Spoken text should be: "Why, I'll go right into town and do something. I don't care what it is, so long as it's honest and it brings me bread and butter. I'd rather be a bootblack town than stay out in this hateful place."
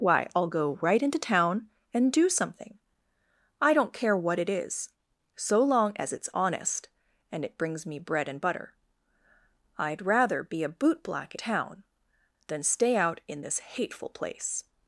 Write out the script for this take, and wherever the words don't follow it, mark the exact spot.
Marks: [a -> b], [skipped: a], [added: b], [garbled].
"Why, I'll go right into town and do something. I don't care what it is, so long as it's honest and it brings me bread and butter. I'd rather be a bootblack town than stay out in this hateful place."